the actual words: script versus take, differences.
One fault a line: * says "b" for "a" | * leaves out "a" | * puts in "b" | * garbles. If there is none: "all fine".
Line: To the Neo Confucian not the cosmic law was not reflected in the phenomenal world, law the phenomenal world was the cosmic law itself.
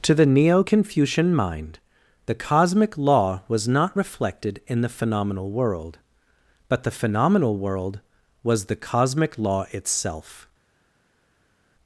* says "mind" for "not"
* says "but" for "law"